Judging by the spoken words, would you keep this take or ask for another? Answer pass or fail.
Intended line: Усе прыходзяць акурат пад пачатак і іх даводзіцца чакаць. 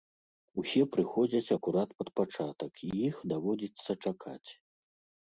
pass